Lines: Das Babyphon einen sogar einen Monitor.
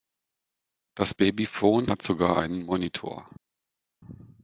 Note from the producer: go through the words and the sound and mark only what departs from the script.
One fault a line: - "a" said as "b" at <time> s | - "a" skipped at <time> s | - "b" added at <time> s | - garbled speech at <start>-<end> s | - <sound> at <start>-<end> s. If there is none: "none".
- "einen" said as "hat" at 1.9 s